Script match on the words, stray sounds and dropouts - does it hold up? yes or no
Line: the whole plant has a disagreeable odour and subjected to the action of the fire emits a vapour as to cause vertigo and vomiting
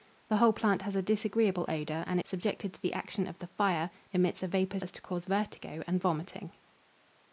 yes